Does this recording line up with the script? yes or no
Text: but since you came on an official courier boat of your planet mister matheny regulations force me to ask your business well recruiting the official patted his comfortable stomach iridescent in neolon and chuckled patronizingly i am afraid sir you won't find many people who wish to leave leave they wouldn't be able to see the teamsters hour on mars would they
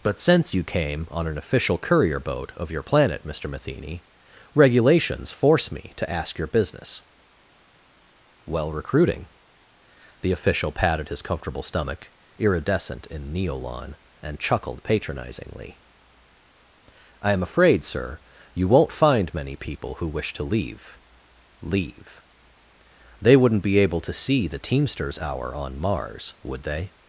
yes